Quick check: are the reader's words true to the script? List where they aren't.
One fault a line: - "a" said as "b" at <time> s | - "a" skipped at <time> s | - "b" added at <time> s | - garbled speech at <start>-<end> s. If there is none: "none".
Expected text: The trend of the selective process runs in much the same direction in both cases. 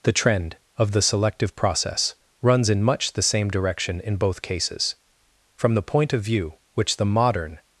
- "From the point of view which the modern" added at 5.5 s